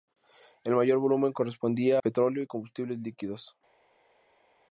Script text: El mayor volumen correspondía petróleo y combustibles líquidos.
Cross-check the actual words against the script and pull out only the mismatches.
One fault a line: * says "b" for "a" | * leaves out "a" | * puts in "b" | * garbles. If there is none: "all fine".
all fine